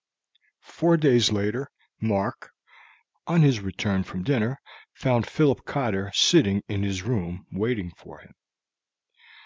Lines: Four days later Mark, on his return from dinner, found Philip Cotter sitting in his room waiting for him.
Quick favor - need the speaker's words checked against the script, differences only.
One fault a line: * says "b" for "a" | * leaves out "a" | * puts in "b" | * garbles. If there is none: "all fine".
all fine